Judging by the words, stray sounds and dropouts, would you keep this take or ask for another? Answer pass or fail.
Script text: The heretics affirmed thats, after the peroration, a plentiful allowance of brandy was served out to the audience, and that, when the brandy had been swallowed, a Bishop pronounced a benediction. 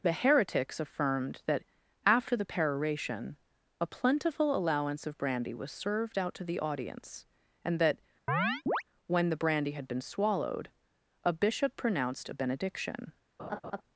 fail